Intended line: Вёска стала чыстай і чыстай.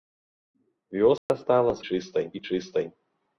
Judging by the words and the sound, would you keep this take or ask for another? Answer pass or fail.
fail